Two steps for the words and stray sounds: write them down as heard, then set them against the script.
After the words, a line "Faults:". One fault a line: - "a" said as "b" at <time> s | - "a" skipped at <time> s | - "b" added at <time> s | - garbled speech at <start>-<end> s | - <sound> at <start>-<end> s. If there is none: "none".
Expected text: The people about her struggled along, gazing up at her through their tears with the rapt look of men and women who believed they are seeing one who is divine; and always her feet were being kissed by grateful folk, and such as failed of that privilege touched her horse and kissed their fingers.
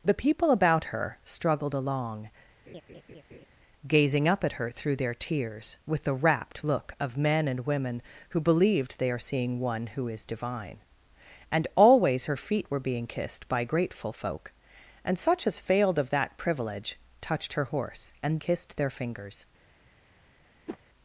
The people about her struggled along, gazing up at her through their tears with the rapt look of men and women who believed they are seeing one who is divine; and always her feet were being kissed by grateful folk, and such as failed of that privilege touched her horse and kissed their fingers.
Faults:
- laugh at 2.7-3.5 s
- whoosh at 20.7-20.8 s